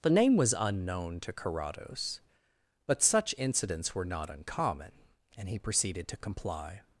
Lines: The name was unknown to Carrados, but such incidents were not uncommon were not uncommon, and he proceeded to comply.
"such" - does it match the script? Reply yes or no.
yes